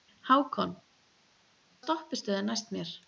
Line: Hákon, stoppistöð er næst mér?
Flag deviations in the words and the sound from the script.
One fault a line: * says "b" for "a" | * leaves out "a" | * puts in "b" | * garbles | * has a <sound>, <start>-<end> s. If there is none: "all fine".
all fine